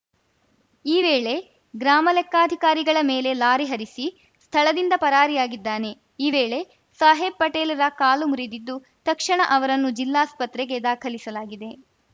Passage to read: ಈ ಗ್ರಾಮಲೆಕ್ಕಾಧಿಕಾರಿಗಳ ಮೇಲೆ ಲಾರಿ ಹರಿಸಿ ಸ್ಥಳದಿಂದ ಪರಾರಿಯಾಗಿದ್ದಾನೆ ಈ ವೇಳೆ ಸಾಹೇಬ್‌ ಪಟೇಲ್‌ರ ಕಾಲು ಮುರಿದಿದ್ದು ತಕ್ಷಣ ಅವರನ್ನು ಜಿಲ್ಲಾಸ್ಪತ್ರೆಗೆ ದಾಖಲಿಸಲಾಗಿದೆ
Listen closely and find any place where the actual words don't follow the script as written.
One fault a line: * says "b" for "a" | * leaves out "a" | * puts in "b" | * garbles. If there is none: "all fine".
* puts in "ವೇಳೆ"